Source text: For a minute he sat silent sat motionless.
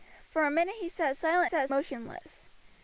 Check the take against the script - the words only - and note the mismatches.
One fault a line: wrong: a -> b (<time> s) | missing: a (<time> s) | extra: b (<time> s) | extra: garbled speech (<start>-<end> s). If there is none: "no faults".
no faults